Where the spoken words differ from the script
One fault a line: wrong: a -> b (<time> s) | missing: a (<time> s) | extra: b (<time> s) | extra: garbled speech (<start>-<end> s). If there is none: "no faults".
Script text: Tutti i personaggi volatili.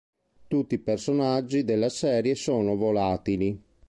extra: della serie sono (1.6 s)